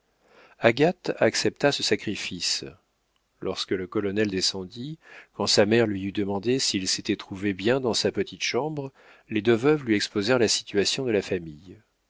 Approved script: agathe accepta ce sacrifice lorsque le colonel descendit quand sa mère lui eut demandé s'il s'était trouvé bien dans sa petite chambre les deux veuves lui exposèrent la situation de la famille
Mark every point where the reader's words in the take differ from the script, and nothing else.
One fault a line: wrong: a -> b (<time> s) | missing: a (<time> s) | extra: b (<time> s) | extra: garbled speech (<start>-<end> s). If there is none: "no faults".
no faults